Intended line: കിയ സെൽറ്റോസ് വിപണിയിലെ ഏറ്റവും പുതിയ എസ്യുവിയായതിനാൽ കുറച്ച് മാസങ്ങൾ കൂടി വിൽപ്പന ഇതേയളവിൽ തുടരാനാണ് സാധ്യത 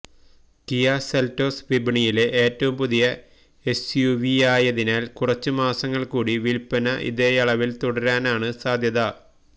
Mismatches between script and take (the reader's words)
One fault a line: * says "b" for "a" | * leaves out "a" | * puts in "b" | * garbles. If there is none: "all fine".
all fine